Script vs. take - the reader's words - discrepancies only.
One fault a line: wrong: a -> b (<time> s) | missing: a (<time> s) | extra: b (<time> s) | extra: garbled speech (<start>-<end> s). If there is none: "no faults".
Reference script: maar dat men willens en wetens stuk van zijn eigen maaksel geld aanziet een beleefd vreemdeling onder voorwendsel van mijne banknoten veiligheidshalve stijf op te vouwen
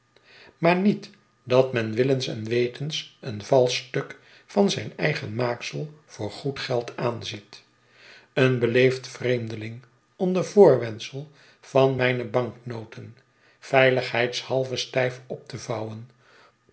extra: niet (0.8 s)
extra: een valsch (3.2 s)
extra: voor goed (6.0 s)